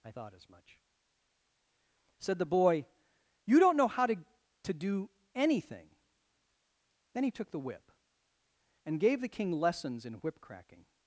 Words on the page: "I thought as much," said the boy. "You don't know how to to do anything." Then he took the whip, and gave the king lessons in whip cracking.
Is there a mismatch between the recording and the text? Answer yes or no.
no